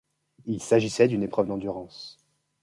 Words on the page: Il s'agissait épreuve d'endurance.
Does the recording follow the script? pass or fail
fail